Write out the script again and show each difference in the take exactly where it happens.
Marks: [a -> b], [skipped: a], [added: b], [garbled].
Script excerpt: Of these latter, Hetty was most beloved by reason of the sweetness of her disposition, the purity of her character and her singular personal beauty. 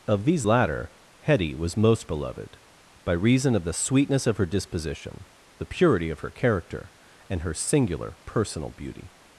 Of these latter, Hetty was most beloved by reason of the sweetness of her disposition, the purity of her character and her singular personal beauty.